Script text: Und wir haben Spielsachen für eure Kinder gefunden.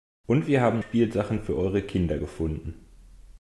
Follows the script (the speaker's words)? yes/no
yes